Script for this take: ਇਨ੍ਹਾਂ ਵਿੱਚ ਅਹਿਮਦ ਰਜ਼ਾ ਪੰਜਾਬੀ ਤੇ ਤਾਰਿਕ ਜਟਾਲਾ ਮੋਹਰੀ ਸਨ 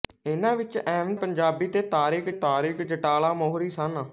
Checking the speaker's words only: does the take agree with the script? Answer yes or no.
no